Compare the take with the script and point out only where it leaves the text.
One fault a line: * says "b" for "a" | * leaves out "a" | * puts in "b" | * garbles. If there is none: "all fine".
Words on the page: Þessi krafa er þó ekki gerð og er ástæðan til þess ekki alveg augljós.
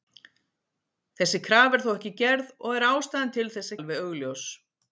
* leaves out "ekki"